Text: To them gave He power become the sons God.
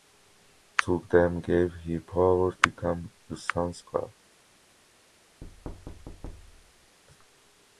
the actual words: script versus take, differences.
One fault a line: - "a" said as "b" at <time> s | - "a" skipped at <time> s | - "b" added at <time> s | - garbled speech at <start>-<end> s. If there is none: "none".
none